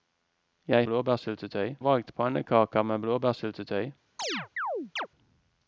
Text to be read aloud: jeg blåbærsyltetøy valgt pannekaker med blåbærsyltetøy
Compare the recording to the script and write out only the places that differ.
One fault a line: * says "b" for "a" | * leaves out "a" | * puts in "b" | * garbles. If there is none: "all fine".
all fine